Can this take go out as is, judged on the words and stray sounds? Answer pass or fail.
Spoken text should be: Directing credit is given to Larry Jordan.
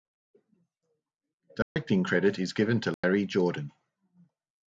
fail